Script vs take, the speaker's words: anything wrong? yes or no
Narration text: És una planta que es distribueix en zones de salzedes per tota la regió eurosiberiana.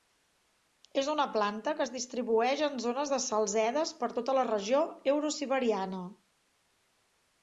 no